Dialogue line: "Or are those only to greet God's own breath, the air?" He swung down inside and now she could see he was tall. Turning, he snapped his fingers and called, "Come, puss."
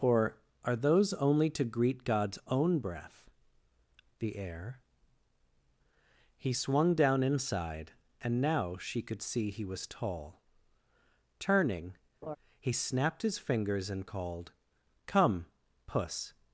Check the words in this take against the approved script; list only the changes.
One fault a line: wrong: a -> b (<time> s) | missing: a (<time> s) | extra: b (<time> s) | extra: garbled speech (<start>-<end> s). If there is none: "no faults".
no faults